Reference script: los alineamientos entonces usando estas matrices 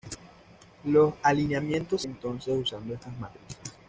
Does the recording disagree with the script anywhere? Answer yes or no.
no